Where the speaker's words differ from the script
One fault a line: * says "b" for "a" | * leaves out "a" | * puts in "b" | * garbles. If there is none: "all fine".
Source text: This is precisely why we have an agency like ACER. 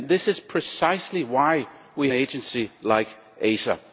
* leaves out "have an"